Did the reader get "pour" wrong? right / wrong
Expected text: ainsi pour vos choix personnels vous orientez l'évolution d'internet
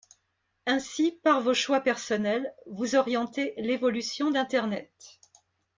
wrong